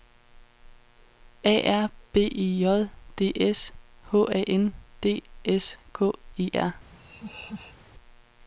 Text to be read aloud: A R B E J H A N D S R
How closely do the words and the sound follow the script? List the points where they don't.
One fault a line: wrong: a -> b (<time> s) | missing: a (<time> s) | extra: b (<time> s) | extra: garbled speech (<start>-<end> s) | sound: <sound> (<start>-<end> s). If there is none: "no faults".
extra: D S (3.1 s)
extra: K E (5.9 s)
sound: laugh (6.9-7.8 s)